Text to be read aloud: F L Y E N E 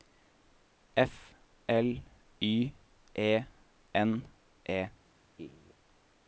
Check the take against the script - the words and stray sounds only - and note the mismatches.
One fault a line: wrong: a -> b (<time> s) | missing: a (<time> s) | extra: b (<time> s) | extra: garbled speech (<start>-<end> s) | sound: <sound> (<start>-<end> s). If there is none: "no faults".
sound: laugh (5.4-5.7 s)